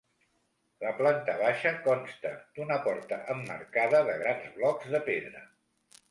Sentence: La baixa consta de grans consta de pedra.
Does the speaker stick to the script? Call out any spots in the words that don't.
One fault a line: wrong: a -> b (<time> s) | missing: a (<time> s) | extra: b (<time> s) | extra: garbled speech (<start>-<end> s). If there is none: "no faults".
extra: planta (1.0 s)
extra: d'una porta emmarcada (2.6 s)
wrong: consta -> blocs (4.6 s)